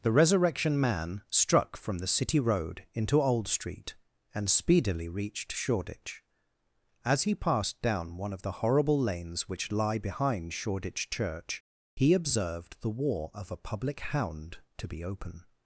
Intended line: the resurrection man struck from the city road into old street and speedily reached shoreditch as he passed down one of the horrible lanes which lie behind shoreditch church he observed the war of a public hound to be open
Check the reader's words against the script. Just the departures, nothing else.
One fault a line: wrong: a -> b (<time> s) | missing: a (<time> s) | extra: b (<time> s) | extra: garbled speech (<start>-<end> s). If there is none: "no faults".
no faults